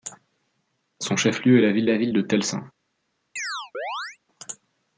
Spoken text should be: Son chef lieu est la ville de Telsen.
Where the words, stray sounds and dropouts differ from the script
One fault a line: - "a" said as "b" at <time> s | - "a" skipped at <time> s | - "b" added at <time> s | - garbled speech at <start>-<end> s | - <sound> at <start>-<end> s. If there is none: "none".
- "la ville" added at 1.9 s
- chirp at 3.4-4.2 s